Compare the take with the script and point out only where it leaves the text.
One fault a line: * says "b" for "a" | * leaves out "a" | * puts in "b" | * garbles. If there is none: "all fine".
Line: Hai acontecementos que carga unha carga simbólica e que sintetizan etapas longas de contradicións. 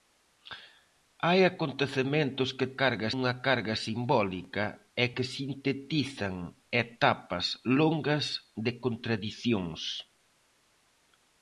all fine